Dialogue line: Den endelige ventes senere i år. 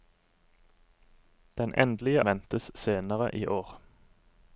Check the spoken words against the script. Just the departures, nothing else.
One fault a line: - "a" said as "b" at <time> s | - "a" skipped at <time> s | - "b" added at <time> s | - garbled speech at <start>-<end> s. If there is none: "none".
none